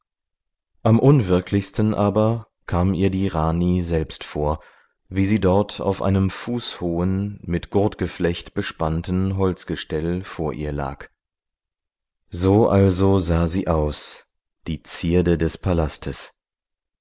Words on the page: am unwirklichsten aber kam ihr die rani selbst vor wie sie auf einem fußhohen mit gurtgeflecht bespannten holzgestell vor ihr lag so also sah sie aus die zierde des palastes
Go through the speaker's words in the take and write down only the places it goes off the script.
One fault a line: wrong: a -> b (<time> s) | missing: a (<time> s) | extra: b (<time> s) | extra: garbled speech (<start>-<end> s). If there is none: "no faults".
extra: dort (5.4 s)